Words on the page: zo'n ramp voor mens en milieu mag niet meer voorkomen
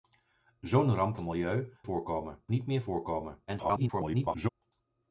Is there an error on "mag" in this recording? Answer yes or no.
yes